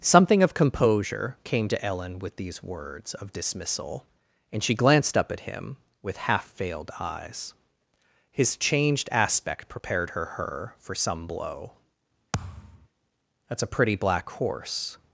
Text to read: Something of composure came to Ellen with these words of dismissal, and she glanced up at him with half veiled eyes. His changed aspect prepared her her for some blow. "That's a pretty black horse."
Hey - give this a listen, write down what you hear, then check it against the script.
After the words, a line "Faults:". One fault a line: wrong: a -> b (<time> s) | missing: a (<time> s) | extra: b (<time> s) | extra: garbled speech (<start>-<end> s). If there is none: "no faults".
Something of composure came to Ellen with these words of dismissal, and she glanced up at him with half veiled eyes. His changed aspect prepared her her for some blow. "That's a pretty black horse."
Faults:
no faults